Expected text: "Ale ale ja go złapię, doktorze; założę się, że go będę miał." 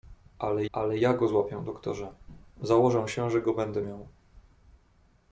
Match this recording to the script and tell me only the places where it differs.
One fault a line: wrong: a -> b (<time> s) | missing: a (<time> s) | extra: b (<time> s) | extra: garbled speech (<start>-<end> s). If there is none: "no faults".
no faults